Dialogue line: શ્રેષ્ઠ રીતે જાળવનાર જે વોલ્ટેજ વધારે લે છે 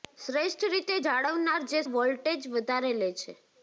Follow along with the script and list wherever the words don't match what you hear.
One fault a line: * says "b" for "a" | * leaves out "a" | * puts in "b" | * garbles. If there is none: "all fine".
all fine